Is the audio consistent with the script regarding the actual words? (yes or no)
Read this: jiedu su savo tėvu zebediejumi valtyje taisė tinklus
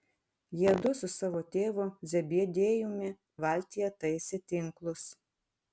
yes